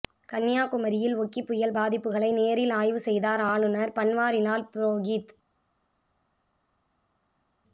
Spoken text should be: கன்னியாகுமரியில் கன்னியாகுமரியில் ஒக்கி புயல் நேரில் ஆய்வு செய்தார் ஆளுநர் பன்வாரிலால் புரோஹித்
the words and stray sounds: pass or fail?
fail